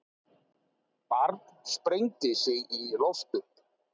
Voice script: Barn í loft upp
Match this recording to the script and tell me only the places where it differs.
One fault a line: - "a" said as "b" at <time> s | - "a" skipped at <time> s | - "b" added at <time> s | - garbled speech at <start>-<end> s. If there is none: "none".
- "sprengdi sig" added at 1.7 s